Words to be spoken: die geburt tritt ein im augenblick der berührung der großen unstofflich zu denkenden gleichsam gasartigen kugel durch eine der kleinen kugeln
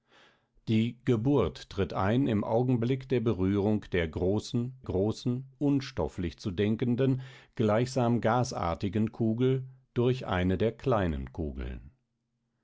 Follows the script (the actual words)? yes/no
no